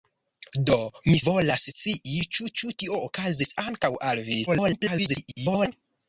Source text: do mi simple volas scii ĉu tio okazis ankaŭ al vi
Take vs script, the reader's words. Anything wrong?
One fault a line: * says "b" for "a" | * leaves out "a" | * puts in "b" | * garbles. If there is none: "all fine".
* leaves out "simple"
* puts in "ĉu"
* garbles